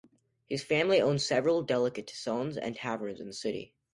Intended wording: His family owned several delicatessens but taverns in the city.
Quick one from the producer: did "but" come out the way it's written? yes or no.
no